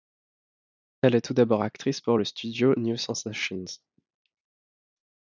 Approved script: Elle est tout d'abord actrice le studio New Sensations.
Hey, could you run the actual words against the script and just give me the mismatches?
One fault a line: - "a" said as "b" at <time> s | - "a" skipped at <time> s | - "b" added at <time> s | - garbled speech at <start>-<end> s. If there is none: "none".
- "pour" added at 2.0 s